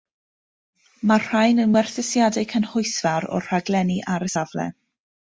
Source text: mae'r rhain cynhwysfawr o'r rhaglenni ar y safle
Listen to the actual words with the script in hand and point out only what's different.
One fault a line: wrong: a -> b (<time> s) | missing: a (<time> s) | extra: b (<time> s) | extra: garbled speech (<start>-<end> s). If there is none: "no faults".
extra: yn werthusiadau (1.6 s)